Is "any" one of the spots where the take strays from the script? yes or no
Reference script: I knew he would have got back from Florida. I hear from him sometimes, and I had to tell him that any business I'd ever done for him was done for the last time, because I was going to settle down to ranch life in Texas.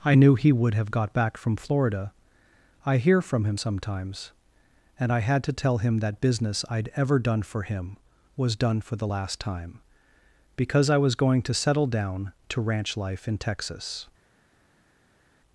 yes